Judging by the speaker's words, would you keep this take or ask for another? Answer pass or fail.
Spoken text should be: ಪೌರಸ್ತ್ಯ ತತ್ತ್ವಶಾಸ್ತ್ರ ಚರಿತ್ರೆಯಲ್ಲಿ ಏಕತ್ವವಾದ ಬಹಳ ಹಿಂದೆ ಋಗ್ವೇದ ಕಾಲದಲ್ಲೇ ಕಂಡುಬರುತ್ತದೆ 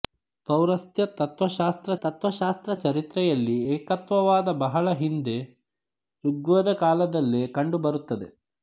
fail